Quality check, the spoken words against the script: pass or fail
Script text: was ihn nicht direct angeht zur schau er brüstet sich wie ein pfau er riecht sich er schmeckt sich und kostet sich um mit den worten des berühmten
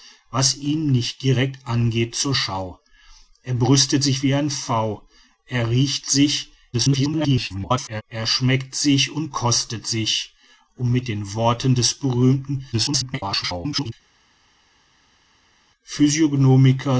fail